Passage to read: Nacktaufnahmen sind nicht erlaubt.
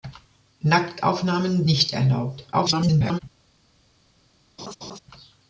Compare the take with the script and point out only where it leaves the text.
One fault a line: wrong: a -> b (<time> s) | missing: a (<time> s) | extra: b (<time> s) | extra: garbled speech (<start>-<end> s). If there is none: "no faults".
missing: sind (1.7 s)
extra: garbled speech (2.5-3.2 s)